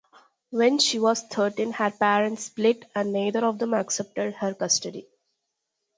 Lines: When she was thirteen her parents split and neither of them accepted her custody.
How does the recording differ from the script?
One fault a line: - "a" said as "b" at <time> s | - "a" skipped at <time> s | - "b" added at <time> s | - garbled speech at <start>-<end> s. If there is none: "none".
none